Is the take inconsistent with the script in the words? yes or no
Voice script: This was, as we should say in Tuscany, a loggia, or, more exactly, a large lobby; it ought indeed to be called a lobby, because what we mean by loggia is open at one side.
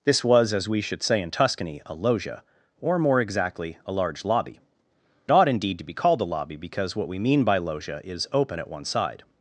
yes